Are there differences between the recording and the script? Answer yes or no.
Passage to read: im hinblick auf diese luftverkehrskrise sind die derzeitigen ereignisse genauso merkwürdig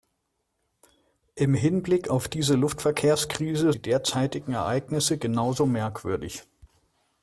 yes